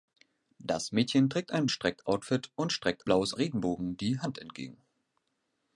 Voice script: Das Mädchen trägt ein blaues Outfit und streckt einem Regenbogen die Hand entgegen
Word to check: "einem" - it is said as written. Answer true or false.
false